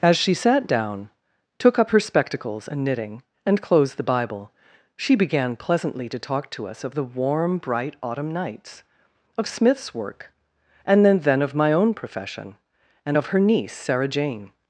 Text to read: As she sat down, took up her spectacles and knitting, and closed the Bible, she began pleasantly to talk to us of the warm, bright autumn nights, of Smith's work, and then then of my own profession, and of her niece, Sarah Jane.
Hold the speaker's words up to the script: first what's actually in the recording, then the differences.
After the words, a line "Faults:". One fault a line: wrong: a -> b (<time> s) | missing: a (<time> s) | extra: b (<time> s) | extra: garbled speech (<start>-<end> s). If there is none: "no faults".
As she sat down, took up her spectacles and knitting, and closed the Bible, she began pleasantly to talk to us of the warm, bright autumn nights, of Smith's work, and then then of my own profession, and of her niece, Sarah Jane.
Faults:
no faults